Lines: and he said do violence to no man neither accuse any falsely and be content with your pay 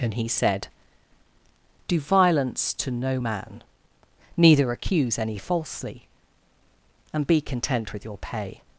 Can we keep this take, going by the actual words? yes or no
yes